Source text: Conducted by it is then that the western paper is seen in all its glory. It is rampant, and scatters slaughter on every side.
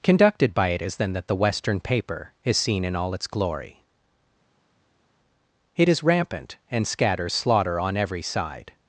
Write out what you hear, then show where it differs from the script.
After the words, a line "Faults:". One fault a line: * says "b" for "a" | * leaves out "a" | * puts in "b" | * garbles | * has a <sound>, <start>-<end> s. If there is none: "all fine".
Conducted by it is then that the western paper is seen in all its glory. It is rampant, and scatters slaughter on every side.
Faults:
all fine